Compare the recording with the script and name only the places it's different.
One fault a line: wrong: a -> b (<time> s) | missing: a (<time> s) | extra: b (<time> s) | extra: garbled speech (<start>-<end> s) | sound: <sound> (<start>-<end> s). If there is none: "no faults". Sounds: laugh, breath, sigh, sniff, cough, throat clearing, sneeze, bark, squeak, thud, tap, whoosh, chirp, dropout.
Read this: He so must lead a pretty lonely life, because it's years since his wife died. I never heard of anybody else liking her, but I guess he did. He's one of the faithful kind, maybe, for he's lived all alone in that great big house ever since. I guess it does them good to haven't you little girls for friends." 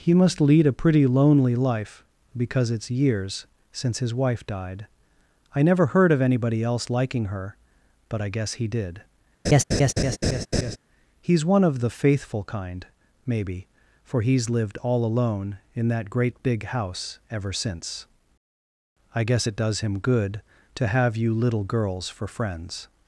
missing: so (0.1 s)
sound: laugh (9.4-10.8 s)
wrong: them -> him (19.8 s)
wrong: haven't -> have (20.9 s)